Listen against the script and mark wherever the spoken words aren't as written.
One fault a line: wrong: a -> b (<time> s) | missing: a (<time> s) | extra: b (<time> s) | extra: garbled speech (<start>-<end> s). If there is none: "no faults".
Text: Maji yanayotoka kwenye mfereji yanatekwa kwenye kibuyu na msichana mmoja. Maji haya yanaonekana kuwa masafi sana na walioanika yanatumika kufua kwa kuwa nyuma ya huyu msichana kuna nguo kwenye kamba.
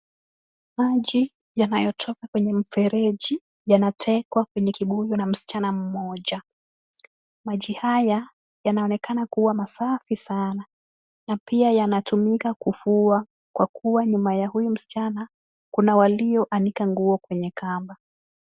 wrong: walioanika -> pia (11.4 s)
extra: walioanika (16.0 s)